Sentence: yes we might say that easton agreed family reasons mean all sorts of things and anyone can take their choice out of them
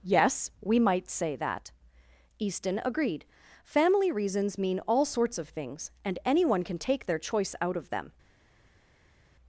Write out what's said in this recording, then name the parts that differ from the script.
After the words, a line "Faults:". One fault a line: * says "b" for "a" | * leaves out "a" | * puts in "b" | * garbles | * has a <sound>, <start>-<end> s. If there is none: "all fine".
yes we might say that easton agreed family reasons mean all sorts of things and anyone can take their choice out of them
Faults:
all fine